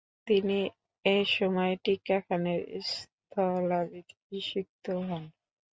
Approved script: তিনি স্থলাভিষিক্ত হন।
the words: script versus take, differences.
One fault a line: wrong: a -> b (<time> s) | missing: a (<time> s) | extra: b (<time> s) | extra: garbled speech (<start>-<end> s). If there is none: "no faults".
extra: এসময় টিক্কা খানের (1.1 s)